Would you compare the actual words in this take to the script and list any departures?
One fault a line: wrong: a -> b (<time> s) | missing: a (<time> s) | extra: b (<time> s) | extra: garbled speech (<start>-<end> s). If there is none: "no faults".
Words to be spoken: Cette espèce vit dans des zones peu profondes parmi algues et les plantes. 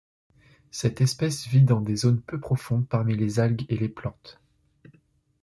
extra: les (3.2 s)